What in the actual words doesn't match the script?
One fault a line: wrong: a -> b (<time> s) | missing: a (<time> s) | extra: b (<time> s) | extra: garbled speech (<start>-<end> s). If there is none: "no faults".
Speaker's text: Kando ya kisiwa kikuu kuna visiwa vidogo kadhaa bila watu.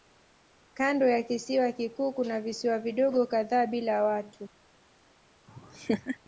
no faults